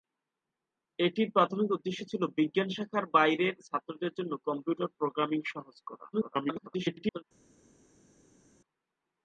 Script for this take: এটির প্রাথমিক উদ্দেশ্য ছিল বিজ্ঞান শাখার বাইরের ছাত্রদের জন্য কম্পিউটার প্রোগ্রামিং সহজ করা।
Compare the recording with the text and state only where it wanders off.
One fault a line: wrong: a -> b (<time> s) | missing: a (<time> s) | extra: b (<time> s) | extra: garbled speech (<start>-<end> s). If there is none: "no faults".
extra: garbled speech (6.1-7.2 s)